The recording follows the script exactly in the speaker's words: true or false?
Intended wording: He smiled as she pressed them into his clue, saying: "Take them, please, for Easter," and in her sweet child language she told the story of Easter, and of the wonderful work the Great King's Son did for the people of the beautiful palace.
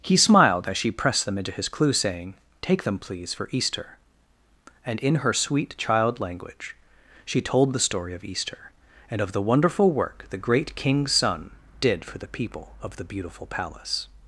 true